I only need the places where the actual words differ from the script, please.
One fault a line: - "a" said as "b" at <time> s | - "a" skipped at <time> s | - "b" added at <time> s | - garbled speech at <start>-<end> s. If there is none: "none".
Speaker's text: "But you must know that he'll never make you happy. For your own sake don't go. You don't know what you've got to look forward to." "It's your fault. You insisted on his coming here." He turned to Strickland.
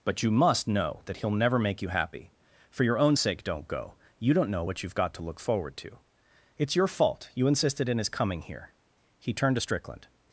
- "on" said as "in" at 7.9 s